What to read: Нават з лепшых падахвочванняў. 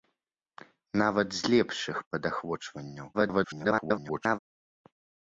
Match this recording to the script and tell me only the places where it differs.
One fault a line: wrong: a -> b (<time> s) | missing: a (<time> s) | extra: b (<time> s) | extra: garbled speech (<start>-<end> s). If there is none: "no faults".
extra: garbled speech (3.1-4.4 s)